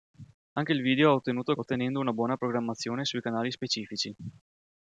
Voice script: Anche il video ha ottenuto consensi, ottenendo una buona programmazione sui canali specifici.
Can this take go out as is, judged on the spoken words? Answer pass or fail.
fail